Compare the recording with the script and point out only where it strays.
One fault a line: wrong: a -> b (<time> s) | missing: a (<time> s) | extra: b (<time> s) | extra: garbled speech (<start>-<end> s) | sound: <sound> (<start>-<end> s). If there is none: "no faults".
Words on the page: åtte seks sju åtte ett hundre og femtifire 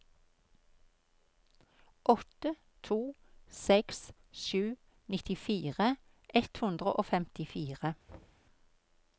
extra: to (2.8 s)
wrong: åtte -> nittifire (5.2 s)
sound: thud (8.1-8.5 s)